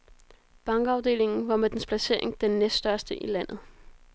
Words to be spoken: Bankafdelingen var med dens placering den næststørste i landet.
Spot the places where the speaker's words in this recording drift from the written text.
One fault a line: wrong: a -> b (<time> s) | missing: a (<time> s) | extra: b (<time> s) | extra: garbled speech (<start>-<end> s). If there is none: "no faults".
no faults